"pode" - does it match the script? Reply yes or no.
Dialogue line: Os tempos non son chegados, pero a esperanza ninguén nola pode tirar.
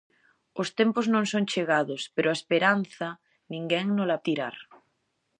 no